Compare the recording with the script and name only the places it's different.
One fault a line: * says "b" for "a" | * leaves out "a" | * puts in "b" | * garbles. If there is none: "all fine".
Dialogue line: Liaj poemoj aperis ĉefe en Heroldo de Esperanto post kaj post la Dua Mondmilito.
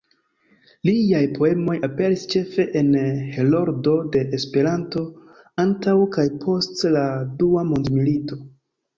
* says "antaŭ" for "post"